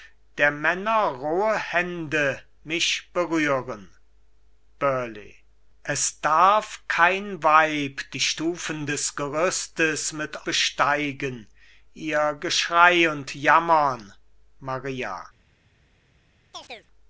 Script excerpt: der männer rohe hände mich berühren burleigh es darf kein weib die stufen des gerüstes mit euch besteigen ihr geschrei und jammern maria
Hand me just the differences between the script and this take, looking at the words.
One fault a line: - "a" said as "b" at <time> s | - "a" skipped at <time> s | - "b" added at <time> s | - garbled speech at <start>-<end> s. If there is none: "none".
- "euch" skipped at 10.5 s